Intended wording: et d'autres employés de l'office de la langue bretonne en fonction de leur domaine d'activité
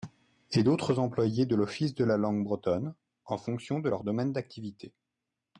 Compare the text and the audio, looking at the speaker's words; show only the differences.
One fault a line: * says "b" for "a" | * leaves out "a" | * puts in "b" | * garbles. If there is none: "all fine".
all fine